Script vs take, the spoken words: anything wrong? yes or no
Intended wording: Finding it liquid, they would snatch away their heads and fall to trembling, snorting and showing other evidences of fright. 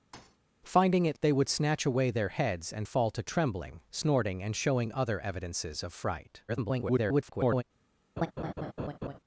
yes